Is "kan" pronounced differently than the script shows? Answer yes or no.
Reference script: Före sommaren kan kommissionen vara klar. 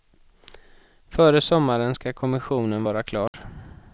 yes